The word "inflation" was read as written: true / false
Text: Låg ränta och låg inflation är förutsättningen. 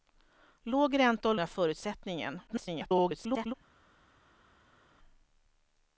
false